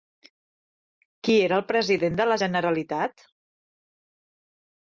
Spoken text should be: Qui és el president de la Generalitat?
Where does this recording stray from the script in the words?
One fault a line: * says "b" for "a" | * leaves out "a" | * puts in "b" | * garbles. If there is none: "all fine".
* says "era" for "és"